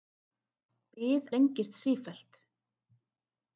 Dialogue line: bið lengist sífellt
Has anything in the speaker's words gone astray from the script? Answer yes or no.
no